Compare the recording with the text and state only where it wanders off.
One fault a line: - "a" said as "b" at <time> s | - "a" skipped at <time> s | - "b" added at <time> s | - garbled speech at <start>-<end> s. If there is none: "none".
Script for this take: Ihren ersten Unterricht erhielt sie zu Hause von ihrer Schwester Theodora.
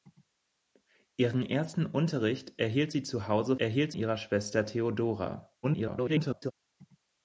- "von" said as "erhielt" at 3.6 s
- garbled speech at 5.6-6.5 s